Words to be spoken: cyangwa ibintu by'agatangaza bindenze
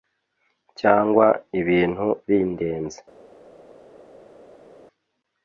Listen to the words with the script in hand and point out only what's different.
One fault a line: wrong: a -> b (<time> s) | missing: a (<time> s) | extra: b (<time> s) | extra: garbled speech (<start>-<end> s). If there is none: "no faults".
missing: by'agatangaza (2.1 s)